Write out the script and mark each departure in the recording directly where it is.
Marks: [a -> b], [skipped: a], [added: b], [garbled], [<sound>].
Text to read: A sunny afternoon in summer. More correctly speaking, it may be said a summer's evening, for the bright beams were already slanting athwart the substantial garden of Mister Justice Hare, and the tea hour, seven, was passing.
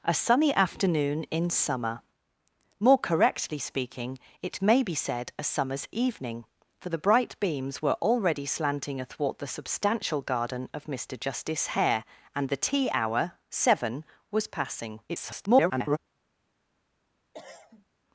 A sunny afternoon in summer. More correctly speaking, it may be said a summer's evening, for the bright beams were already slanting athwart the substantial garden of Mister Justice Hare, and the tea hour, seven, was passing. [garbled] [cough]